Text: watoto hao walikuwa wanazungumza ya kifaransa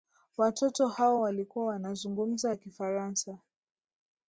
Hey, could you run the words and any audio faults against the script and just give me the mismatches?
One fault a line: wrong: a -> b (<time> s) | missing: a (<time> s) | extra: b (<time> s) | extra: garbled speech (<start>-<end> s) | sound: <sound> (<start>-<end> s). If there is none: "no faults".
no faults